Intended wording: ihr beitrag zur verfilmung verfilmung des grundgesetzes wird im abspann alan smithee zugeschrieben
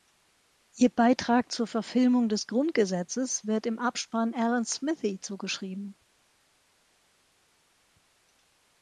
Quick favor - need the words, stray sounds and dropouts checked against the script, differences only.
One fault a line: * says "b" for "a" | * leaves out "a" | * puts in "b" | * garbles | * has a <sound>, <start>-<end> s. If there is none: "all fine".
* leaves out "verfilmung"